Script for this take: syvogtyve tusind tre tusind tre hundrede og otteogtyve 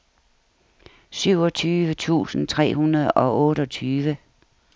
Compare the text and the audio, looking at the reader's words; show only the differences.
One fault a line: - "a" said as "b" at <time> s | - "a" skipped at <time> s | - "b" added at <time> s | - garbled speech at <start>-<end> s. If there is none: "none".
- "tusind tre" skipped at 2.8 s